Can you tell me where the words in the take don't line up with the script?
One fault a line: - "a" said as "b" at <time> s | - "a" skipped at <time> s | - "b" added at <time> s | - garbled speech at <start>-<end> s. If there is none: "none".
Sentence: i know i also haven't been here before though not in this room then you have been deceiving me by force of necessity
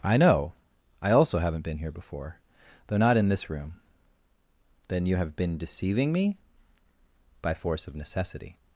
none